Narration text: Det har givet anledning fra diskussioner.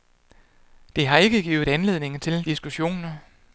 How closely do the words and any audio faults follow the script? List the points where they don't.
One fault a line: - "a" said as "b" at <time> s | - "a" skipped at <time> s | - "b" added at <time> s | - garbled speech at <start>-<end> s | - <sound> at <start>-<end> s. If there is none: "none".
- "ikke" added at 1.2 s
- "fra" said as "til" at 2.2 s